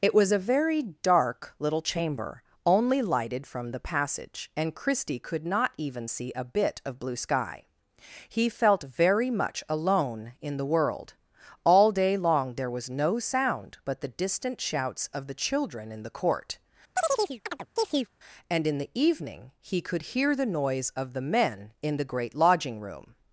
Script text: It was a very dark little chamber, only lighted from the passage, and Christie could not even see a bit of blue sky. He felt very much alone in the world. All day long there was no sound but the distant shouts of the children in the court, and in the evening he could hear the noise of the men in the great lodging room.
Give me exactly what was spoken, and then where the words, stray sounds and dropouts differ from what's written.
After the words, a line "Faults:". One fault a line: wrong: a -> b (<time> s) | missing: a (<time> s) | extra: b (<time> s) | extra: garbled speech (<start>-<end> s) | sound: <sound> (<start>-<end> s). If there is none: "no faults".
It was a very dark little chamber, only lighted from the passage, and Christie could not even see a bit of blue sky. He felt very much alone in the world. All day long there was no sound but the distant shouts of the children in the court, and in the evening he could hear the noise of the men in the great lodging room.
Faults:
sound: chirp (17.0-18.1 s)